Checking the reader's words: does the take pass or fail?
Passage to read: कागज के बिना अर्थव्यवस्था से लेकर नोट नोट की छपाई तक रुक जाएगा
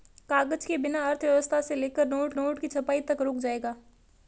pass